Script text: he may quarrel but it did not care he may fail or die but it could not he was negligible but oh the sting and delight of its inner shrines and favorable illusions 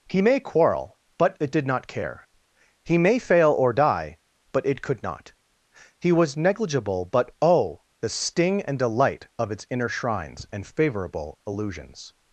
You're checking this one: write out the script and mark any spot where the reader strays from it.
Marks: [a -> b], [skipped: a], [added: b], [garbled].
he may quarrel but it did not care he may fail or die but it could not he was negligible but oh the sting and delight of its inner shrines and favorable illusions